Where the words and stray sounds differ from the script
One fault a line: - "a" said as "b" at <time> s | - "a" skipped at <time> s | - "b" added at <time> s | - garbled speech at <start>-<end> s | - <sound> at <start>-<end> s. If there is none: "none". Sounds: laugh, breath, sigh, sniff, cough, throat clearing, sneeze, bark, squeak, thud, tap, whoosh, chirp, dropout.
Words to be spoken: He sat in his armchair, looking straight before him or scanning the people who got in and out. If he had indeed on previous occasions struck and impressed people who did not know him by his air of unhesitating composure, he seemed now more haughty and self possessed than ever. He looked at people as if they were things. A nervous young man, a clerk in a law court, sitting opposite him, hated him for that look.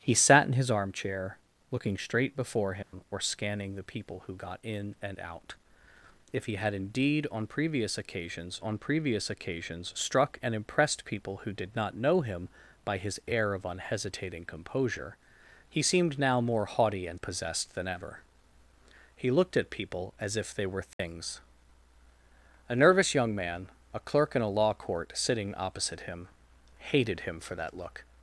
- dropout at 2.8-2.9 s
- "on previous occasions" added at 8.6 s
- "self" skipped at 17.2 s
- dropout at 20.9-21.0 s